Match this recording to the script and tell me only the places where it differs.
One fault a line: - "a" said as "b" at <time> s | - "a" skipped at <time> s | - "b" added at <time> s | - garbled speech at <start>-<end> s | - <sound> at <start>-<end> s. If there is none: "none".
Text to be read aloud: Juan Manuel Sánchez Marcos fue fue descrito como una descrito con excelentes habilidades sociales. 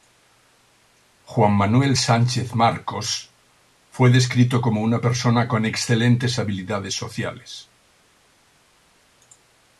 - "fue" skipped at 4.1 s
- "descrito" said as "persona" at 5.0 s